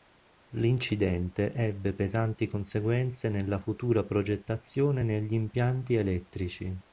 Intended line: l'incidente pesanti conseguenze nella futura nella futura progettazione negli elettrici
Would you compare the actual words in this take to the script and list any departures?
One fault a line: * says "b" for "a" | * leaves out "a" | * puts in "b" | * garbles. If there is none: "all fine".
* puts in "ebbe"
* leaves out "nella futura"
* puts in "impianti"